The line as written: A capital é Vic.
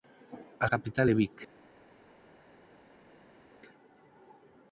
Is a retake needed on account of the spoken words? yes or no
no